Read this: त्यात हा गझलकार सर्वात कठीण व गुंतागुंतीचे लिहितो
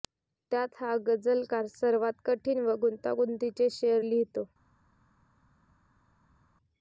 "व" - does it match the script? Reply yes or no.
yes